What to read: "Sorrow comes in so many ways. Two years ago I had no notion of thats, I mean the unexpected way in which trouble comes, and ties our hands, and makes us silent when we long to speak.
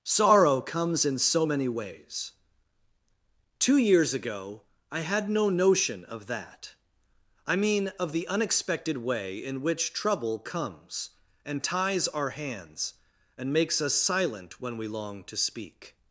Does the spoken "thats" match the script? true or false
false